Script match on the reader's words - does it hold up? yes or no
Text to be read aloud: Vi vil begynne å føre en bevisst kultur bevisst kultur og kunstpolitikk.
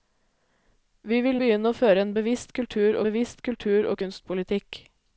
yes